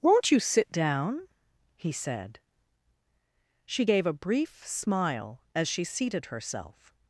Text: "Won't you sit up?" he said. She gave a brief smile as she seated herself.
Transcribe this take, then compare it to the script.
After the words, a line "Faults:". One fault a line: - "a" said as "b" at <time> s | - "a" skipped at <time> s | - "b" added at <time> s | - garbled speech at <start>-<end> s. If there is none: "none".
"Won't you sit down?" he said. She gave a brief smile as she seated herself.
Faults:
- "up" said as "down" at 0.7 s